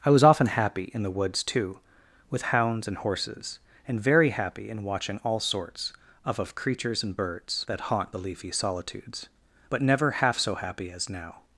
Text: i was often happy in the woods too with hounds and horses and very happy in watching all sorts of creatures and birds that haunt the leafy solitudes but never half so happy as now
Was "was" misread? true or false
false